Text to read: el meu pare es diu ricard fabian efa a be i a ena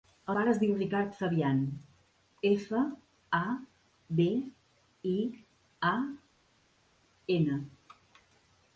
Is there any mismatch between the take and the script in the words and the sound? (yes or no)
yes